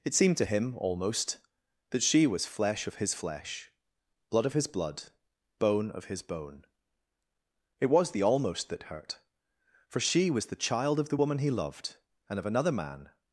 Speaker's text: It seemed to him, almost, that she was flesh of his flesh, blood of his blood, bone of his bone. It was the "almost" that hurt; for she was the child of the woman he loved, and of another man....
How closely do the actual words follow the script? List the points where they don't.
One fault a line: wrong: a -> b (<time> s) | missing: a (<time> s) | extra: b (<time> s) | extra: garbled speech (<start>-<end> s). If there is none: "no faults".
no faults